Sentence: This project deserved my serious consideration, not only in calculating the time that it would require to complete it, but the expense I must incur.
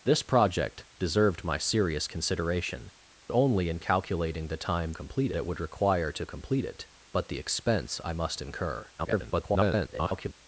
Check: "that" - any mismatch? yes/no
yes